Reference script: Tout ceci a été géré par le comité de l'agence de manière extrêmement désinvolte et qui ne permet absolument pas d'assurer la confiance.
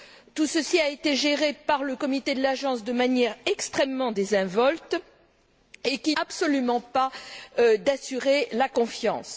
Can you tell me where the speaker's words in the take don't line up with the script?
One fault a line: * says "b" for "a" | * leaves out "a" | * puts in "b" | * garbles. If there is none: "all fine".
* leaves out "ne permet"